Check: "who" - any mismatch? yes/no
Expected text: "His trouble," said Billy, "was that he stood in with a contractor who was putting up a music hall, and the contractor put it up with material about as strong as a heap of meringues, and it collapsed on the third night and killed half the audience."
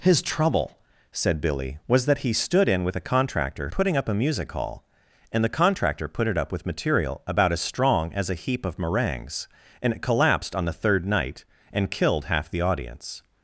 yes